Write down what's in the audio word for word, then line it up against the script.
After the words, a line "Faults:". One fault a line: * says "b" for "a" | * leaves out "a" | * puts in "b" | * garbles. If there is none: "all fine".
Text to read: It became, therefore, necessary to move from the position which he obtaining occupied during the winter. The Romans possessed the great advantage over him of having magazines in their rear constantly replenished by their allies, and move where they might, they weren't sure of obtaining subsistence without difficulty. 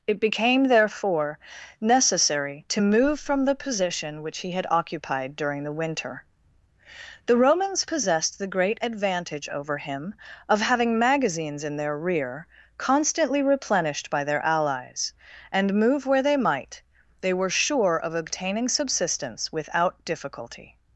It became, therefore, necessary to move from the position which he had occupied during the winter. The Romans possessed the great advantage over him of having magazines in their rear constantly replenished by their allies, and move where they might, they were sure of obtaining subsistence without difficulty.
Faults:
* says "had" for "obtaining"
* says "were" for "weren't"